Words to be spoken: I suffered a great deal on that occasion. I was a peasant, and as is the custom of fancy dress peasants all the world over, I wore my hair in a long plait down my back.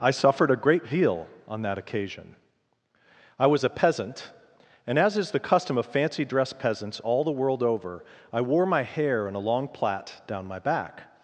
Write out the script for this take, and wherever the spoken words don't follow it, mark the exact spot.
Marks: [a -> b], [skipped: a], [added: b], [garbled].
I suffered a great deal on that occasion. I was a peasant, and as is the custom of fancy dress peasants all the world over, I wore my hair in a long plait down my back.